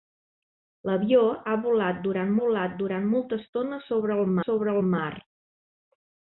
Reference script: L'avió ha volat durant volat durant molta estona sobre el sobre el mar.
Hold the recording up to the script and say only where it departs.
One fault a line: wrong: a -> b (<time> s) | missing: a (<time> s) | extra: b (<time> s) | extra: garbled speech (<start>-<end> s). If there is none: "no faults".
no faults